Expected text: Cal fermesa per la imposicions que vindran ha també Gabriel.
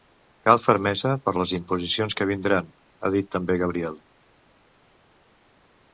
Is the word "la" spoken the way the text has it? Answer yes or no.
no